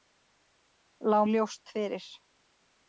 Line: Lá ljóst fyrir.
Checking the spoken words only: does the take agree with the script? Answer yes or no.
yes